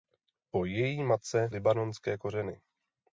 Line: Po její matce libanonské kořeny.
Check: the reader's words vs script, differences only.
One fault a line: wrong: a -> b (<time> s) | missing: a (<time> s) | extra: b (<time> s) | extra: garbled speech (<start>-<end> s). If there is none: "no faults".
no faults